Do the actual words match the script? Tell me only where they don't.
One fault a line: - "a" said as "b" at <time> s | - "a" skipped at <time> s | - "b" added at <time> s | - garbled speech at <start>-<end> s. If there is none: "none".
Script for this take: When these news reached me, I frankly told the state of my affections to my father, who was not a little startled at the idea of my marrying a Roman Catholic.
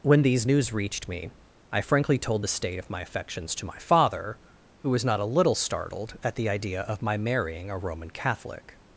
none